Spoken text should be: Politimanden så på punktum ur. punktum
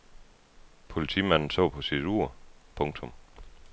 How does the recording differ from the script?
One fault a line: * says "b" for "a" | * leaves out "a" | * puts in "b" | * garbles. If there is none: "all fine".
* says "sit" for "punktum"